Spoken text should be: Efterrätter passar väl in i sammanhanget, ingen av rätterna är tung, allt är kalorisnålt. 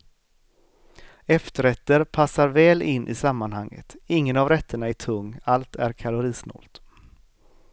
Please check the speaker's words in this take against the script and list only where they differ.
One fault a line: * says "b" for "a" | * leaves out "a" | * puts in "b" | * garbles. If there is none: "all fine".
all fine